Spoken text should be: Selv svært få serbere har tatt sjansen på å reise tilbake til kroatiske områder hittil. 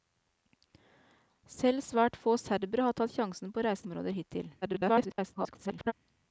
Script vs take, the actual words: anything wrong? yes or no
yes